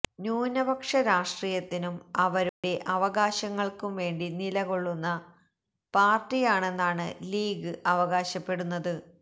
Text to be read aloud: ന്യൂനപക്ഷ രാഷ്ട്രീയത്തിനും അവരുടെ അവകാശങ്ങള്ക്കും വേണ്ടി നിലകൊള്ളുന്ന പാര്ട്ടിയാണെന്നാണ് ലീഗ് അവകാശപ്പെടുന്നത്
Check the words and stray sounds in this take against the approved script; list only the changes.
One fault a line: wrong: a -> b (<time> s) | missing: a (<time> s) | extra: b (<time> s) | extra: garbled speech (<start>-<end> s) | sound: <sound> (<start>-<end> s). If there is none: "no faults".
sound: dropout (2.5-2.6 s)